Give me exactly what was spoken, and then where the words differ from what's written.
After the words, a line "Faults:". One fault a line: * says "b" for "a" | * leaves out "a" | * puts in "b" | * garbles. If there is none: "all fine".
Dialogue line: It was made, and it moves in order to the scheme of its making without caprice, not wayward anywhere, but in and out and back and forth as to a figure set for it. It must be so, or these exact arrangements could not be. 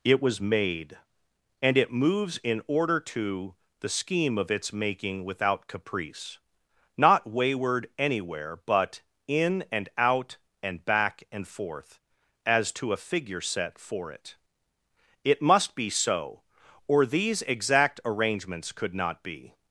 It was made, and it moves in order to the scheme of its making without caprice, not wayward anywhere, but in and out and back and forth as to a figure set for it. It must be so, or these exact arrangements could not be.
Faults:
all fine